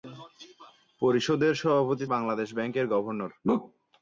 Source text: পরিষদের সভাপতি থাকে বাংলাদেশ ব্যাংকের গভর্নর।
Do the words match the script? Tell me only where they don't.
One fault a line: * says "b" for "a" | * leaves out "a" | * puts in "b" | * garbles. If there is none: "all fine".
* leaves out "থাকে"